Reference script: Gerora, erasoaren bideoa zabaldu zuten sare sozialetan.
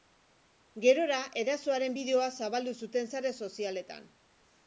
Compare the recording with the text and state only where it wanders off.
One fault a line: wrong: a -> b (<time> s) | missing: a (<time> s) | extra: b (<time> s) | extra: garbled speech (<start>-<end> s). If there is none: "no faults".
no faults